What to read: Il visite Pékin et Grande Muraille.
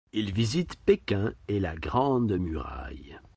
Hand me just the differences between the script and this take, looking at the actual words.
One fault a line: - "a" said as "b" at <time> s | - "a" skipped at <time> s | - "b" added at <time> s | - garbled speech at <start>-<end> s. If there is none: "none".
- "la" added at 1.6 s